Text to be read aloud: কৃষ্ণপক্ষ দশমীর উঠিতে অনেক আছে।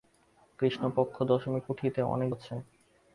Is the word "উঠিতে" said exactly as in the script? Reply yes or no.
yes